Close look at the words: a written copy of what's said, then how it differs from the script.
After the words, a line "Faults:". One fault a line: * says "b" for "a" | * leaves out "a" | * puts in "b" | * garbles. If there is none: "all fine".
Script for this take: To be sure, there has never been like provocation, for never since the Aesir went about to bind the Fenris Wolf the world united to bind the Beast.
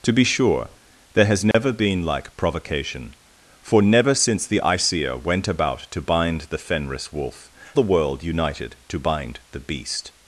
To be sure, there has never been like provocation, for never since the Aesir went about to bind the Fenris Wolf the world united to bind the Beast.
Faults:
all fine